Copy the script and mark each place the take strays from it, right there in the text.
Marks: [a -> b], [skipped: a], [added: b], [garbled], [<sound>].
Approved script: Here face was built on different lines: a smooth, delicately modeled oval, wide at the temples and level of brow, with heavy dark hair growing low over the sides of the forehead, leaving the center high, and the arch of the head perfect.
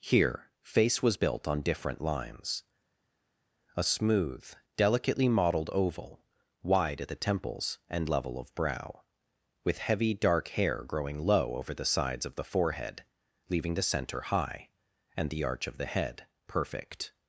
Here face was built on different lines: a smooth, delicately modeled oval, wide at the temples and level of brow, with heavy dark hair growing low over the sides of the forehead, leaving the center high, and the arch of the head perfect.